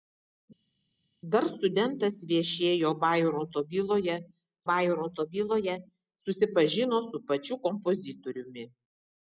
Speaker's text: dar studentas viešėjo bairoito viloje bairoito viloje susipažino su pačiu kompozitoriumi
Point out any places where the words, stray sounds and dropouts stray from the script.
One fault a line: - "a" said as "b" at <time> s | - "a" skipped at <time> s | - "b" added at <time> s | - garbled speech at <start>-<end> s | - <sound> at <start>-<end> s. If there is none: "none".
none